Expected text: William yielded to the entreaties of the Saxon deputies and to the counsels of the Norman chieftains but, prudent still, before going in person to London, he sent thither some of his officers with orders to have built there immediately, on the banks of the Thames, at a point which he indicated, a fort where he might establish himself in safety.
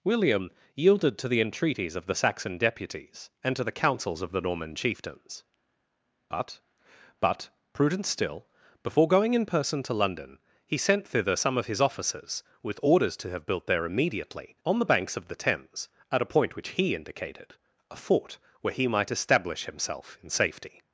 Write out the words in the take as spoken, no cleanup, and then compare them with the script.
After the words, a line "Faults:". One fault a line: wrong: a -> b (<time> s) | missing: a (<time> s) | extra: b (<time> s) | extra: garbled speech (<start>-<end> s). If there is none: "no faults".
William yielded to the entreaties of the Saxon deputies and to the counsels of the Norman chieftains but but, prudent still, before going in person to London, he sent thither some of his officers with orders to have built there immediately, on the banks of the Thames, at a point which he indicated, a fort where he might establish himself in safety.
Faults:
extra: but (7.2 s)